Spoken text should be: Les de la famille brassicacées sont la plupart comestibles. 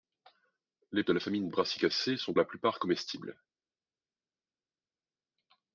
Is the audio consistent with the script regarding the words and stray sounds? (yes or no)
yes